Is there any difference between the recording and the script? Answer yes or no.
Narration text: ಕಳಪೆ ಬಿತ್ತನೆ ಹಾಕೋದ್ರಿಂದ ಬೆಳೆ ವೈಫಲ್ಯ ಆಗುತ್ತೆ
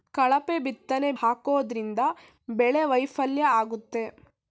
no